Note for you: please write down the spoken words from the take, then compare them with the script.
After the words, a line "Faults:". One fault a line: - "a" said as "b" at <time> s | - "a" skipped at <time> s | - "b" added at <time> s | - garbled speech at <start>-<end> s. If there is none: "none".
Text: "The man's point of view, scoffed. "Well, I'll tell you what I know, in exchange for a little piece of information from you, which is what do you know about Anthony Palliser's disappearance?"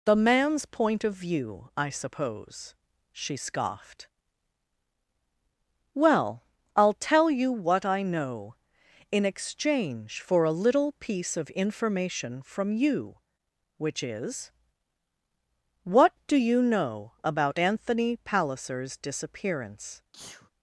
"The man's point of view, I suppose," she scoffed. "Well, I'll tell you what I know, in exchange for a little piece of information from you, which is what do you know about Anthony Palliser's disappearance?"
Faults:
- "I suppose she" added at 1.8 s